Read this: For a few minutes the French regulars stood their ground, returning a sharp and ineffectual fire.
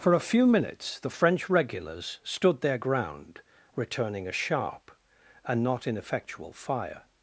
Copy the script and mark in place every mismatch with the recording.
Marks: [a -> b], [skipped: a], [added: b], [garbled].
For a few minutes the French regulars stood their ground, returning a sharp and [added: not] ineffectual fire.